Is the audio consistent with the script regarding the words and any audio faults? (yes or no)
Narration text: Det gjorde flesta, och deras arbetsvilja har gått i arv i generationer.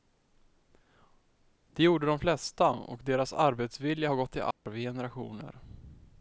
no